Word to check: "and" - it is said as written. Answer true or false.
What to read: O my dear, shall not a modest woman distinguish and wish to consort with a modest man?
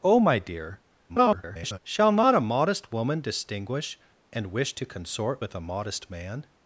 true